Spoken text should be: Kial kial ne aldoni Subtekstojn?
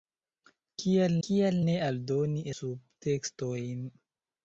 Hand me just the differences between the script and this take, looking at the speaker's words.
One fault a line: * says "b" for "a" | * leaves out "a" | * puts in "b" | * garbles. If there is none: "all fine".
all fine